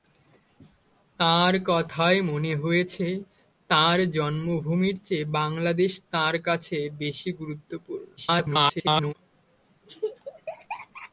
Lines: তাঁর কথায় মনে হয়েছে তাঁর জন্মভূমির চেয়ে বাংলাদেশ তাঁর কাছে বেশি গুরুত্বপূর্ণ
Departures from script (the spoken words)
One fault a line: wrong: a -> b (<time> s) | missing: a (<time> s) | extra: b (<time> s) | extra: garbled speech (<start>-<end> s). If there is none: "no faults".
extra: garbled speech (8.2-9.1 s)